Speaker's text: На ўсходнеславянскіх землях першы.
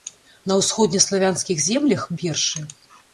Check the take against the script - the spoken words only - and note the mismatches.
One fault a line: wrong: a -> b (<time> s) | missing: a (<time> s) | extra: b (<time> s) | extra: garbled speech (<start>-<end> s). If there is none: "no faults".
no faults